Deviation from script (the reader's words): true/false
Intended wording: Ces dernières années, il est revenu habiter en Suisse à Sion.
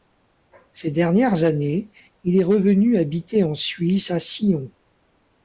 false